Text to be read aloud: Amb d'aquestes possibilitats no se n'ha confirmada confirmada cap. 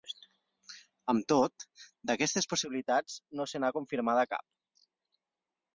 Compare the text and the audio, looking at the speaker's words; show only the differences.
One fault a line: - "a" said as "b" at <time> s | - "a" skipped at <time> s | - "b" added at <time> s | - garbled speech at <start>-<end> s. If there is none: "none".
- "tot" added at 1.3 s
- "confirmada" skipped at 4.3 s